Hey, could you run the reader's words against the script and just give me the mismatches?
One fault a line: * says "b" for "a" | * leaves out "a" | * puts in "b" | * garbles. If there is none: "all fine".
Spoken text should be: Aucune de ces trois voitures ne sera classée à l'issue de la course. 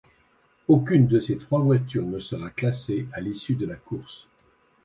all fine